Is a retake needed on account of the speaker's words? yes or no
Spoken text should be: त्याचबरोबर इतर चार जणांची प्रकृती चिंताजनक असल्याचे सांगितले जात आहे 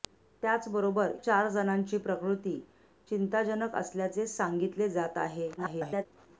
yes